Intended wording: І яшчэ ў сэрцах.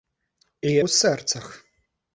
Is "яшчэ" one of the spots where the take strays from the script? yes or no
yes